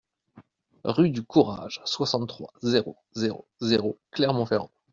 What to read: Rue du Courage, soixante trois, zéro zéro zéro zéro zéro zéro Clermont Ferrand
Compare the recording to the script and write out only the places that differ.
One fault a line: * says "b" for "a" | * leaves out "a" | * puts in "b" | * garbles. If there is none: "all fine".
* leaves out "zéro zéro zéro"